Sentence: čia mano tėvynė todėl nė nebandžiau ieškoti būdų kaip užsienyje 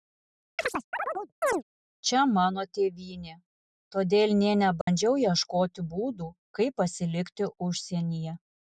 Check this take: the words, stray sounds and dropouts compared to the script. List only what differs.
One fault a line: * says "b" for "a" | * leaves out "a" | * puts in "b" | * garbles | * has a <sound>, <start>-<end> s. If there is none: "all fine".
* has a chirp, 0.6-1.6 s
* has a dropout, 4.8-4.9 s
* puts in "pasilikti"